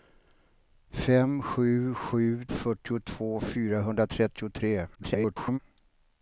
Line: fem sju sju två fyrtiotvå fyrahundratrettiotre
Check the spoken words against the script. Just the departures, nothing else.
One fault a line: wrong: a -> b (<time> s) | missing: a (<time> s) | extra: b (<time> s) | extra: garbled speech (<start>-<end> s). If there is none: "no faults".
missing: två (2.5 s)
extra: garbled speech (5.0-5.6 s)